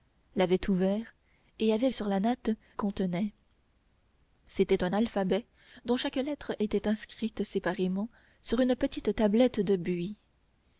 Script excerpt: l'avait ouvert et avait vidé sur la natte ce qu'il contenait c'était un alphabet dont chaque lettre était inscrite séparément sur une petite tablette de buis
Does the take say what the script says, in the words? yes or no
no